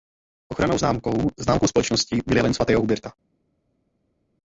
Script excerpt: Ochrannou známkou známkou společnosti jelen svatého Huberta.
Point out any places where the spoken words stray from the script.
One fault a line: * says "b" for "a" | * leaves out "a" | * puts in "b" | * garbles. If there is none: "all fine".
* puts in "byl"